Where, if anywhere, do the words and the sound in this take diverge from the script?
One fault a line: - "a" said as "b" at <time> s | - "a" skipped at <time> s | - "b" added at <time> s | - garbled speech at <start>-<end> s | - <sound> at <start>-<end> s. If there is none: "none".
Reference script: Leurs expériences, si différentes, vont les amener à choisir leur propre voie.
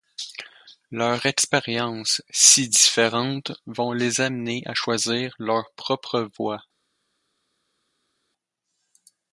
none